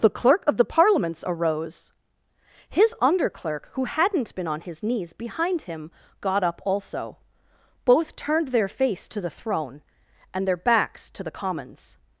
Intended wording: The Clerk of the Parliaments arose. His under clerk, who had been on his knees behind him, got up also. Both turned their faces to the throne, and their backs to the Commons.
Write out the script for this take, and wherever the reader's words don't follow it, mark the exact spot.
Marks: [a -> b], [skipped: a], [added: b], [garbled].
The Clerk of the Parliaments arose. His under clerk, who [had -> hadn't] been on his knees behind him, got up also. Both turned their [faces -> face] to the throne, and their backs to the Commons.